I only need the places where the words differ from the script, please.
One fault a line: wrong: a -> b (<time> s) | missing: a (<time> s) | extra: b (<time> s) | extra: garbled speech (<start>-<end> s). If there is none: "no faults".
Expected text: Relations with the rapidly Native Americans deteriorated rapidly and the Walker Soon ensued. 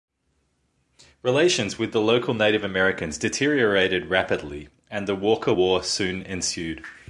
wrong: rapidly -> local (2.0 s)
extra: War (5.5 s)